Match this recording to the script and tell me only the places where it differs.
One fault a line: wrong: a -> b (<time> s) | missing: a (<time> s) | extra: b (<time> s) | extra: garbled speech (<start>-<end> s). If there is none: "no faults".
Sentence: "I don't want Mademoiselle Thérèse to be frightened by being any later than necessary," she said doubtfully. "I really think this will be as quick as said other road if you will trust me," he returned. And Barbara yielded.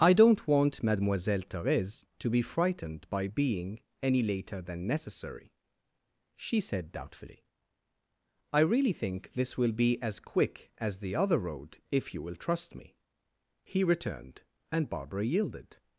wrong: said -> the (11.0 s)